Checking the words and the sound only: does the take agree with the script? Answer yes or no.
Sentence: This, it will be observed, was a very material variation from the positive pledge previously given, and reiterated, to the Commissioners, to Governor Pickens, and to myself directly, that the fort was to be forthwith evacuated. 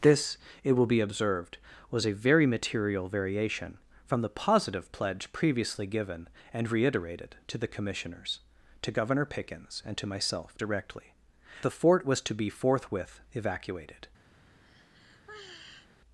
no